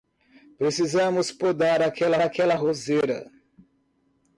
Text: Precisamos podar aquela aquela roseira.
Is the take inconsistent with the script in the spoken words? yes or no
no